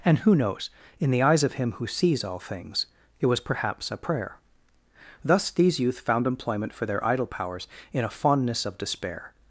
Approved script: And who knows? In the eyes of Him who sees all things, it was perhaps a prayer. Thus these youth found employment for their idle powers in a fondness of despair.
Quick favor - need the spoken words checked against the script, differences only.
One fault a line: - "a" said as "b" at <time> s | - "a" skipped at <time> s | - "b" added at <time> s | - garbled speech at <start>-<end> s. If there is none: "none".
none